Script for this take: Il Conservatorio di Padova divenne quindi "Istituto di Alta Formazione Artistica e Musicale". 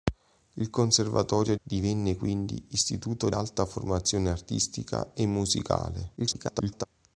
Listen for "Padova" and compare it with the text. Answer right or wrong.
wrong